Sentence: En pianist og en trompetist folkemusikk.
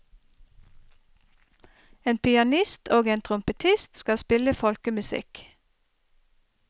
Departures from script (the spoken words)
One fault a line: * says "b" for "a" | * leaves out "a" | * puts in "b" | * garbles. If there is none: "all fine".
* puts in "skal spille"